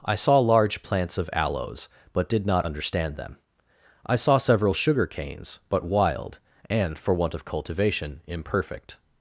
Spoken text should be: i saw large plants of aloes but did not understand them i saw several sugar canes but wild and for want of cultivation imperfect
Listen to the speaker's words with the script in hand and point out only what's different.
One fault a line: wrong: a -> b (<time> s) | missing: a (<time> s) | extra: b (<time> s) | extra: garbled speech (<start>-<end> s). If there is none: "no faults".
no faults